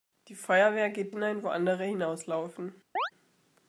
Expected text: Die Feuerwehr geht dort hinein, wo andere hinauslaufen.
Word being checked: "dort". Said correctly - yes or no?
no